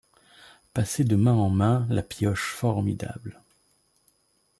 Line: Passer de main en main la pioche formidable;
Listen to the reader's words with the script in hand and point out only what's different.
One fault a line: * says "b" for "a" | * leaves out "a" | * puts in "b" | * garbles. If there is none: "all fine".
all fine